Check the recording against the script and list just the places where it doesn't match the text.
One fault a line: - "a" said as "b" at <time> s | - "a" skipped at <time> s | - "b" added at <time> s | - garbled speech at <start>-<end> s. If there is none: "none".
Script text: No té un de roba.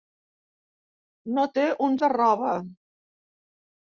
none